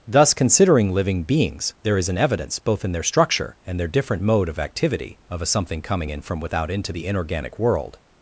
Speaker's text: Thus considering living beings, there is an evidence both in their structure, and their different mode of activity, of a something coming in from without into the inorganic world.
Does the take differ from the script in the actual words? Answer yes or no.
no